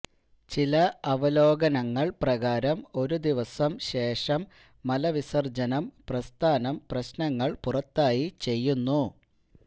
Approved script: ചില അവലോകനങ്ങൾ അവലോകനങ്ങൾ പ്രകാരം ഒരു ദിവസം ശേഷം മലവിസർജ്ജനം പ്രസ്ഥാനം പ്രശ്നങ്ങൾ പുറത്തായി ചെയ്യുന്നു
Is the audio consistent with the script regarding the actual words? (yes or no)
no